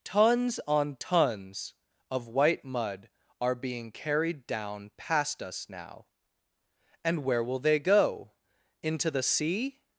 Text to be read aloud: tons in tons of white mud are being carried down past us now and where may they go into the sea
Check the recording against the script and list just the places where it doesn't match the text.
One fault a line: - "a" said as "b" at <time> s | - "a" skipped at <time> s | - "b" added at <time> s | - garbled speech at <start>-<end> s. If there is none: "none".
- "in" said as "on" at 0.7 s
- "may" said as "will" at 7.4 s